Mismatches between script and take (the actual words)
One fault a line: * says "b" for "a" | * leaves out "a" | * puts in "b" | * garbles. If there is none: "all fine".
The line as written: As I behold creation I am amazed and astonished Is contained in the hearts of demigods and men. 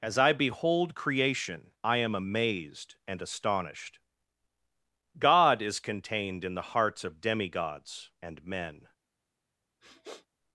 * puts in "God"